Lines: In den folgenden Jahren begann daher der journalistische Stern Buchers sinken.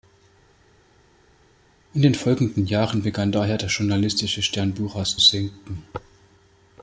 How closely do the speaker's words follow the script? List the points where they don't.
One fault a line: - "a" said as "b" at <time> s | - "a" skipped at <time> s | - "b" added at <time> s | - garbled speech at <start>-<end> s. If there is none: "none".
none